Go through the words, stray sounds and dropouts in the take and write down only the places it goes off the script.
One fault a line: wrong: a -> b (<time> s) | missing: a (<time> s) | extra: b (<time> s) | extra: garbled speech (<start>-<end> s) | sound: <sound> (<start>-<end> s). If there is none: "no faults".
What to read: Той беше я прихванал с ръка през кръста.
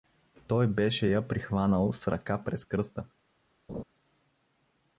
sound: laugh (3.7-3.8 s)